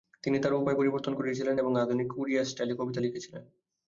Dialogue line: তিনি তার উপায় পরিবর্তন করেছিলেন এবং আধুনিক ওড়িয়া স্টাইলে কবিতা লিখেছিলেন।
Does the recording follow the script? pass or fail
pass